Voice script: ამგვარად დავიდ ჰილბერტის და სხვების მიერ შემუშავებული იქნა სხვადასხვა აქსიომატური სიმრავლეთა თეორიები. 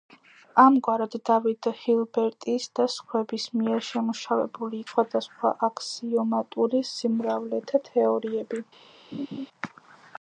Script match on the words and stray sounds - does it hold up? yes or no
no